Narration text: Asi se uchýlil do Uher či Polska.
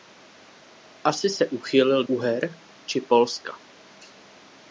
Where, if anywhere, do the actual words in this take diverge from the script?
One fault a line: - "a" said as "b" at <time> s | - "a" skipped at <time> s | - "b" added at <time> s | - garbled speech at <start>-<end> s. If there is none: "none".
- "do" skipped at 2.0 s